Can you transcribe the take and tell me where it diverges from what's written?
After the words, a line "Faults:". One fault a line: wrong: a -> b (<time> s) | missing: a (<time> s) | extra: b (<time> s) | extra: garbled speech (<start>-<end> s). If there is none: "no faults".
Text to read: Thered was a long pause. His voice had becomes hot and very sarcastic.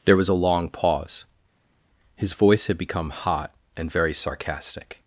There was a long pause. His voice had become hot and very sarcastic.
Faults:
wrong: Thered -> There (0.1 s)
wrong: becomes -> become (2.8 s)